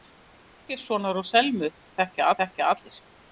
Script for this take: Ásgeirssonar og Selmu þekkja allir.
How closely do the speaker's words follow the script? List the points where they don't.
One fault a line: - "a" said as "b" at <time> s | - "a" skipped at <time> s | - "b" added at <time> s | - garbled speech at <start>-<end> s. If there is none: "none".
- "þekkja" added at 2.4 s